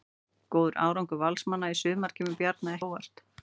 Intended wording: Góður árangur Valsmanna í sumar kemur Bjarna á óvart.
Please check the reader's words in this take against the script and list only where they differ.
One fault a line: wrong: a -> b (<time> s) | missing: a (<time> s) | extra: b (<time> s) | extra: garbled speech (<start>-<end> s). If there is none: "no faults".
no faults